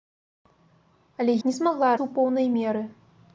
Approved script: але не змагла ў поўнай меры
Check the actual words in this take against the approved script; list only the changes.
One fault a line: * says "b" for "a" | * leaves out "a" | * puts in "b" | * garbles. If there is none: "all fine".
all fine